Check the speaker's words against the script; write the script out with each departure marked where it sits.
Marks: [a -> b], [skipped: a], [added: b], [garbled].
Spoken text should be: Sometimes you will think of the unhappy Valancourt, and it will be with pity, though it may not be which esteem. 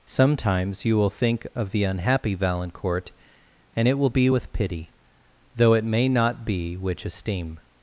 Sometimes you will think of the unhappy Valancourt, and it will be with pity, though it may not be which esteem.